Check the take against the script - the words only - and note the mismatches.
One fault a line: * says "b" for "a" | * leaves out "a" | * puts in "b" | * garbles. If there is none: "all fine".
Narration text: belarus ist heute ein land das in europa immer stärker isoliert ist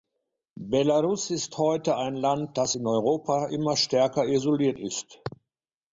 all fine